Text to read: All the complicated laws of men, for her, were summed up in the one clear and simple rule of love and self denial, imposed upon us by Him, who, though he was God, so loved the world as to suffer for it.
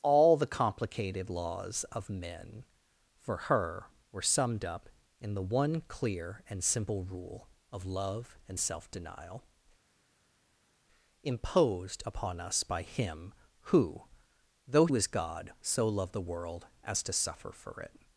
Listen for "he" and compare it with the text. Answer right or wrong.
wrong